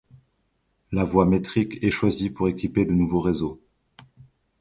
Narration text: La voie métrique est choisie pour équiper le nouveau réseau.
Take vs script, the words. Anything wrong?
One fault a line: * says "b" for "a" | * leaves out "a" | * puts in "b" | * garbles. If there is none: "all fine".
all fine